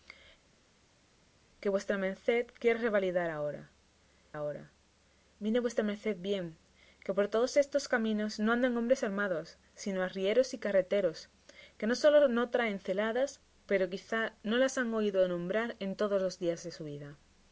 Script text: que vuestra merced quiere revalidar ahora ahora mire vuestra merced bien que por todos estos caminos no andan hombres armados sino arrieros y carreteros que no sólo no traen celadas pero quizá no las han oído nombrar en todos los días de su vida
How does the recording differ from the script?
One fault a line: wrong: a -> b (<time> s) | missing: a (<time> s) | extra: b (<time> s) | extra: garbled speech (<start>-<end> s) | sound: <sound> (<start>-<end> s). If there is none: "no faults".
no faults